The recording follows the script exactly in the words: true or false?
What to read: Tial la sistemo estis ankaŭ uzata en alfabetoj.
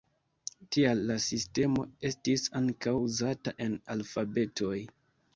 true